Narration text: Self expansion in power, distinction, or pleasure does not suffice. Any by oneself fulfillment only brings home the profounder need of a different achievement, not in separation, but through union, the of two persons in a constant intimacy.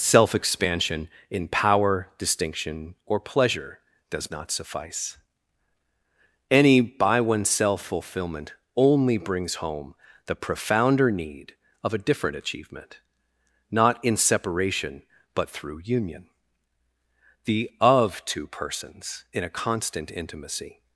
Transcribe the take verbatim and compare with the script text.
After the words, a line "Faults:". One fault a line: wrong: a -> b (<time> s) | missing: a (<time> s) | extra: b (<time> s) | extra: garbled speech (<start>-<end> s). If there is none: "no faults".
Self expansion in power, distinction, or pleasure does not suffice. Any by oneself fulfillment only brings home the profounder need of a different achievement, not in separation, but through union, the of two persons in a constant intimacy.
Faults:
no faults